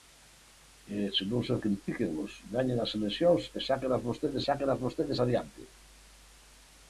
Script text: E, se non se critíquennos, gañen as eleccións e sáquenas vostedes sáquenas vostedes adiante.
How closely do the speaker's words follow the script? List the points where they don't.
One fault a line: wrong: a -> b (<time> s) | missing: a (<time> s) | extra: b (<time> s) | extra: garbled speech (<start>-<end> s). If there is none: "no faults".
no faults